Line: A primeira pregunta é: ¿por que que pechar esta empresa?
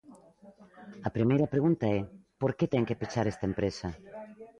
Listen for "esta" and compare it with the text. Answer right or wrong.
right